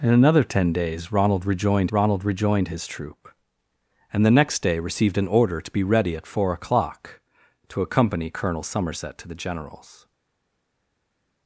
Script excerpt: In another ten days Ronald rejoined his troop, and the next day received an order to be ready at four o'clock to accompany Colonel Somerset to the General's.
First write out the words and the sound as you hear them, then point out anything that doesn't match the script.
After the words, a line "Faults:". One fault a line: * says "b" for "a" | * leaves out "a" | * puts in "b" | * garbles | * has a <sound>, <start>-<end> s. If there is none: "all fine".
In another ten days Ronald rejoined Ronald rejoined his troop, and the next day received an order to be ready at four o'clock to accompany Colonel Somerset to the General's.
Faults:
* puts in "Ronald rejoined"